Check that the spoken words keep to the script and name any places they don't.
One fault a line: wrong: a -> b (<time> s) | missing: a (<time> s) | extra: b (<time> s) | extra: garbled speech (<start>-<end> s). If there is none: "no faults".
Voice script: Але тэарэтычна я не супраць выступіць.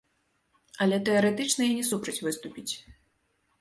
no faults